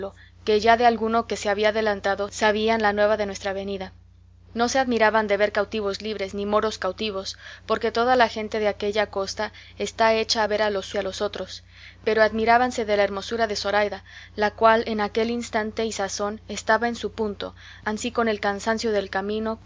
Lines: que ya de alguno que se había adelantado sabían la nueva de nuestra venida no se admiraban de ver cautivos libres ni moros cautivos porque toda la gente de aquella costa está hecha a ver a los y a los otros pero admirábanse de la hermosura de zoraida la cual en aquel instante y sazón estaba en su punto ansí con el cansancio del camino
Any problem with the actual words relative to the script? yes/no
no